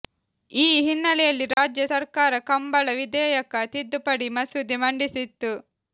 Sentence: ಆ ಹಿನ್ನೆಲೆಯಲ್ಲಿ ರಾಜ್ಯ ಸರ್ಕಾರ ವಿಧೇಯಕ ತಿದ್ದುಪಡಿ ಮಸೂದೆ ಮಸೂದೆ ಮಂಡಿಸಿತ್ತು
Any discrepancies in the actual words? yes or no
yes